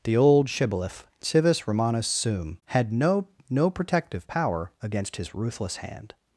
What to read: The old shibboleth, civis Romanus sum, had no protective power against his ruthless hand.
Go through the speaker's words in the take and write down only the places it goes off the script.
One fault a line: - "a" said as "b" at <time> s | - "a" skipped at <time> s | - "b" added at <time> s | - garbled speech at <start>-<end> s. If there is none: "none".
- "no" added at 3.5 s